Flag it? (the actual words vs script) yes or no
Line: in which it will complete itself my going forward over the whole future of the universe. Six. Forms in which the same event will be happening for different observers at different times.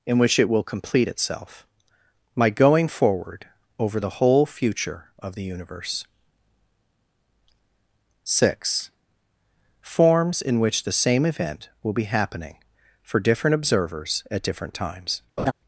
no